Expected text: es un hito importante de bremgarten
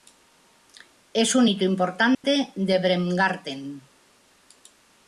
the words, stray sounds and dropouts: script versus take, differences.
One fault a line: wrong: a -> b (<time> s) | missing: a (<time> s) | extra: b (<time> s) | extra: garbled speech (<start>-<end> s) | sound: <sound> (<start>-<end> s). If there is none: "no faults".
sound: dropout (2.1-2.2 s)